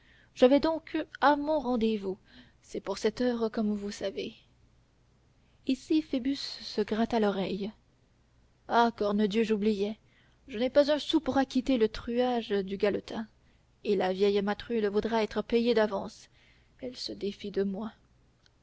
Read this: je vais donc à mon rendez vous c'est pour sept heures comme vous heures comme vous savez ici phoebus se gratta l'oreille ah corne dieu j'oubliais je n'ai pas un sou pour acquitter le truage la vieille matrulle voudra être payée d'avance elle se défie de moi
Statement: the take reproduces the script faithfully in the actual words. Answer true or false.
false